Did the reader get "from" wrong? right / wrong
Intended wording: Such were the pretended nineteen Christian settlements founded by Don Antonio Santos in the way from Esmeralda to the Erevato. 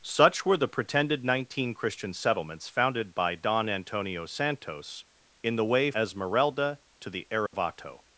wrong